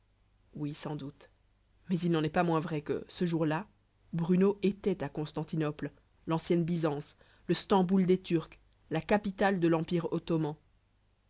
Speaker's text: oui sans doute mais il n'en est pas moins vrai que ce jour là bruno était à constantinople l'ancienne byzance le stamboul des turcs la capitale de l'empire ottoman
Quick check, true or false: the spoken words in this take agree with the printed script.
true